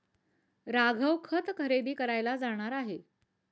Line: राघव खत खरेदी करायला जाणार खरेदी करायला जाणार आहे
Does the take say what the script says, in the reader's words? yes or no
no